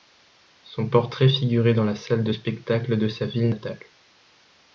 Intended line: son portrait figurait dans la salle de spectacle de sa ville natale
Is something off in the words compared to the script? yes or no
no